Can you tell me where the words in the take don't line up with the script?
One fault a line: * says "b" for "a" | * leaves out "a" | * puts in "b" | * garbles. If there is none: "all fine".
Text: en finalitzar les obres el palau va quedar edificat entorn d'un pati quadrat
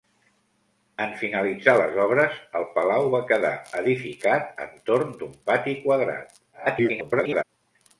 * garbles